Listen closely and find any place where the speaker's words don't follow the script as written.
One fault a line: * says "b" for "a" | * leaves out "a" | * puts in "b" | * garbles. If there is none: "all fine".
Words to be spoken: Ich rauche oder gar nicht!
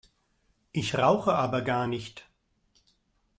* says "aber" for "oder"